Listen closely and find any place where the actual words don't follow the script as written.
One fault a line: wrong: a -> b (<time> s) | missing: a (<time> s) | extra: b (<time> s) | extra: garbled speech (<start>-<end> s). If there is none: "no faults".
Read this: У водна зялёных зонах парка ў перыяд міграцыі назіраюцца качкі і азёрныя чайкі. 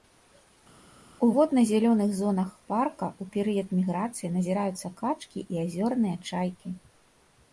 no faults